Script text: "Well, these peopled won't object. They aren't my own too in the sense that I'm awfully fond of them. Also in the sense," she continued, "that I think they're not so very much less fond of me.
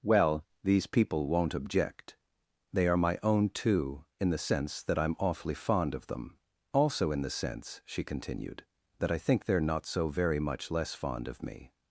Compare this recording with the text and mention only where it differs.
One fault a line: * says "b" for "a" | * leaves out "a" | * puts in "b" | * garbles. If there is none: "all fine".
* says "people" for "peopled"
* says "are" for "aren't"